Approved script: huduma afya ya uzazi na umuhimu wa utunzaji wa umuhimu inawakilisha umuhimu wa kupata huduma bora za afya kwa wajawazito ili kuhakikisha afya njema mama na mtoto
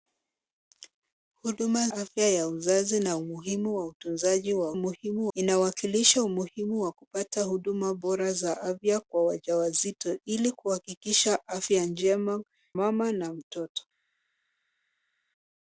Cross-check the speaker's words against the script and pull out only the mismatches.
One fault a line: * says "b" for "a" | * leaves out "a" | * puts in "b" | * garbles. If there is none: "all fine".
all fine